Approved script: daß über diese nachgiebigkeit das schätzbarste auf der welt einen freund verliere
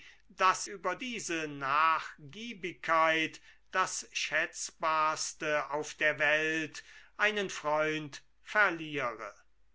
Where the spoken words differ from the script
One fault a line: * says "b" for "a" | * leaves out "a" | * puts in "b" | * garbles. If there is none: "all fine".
all fine